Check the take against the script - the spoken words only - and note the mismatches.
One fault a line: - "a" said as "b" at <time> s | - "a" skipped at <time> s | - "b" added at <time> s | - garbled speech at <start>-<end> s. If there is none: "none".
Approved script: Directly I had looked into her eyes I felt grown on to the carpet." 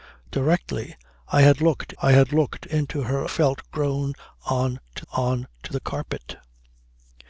- "I had looked" added at 2.0 s
- "eyes I felt grown" said as "felt grown on to" at 3.2 s